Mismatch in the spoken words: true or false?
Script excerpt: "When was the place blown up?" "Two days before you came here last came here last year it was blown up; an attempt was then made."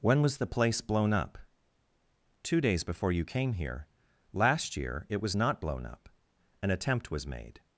true